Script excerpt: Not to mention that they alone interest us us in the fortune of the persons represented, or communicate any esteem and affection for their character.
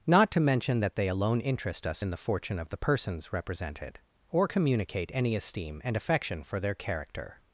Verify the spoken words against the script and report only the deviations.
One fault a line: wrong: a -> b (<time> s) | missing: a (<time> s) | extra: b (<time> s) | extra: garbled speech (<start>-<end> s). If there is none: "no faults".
missing: us (2.0 s)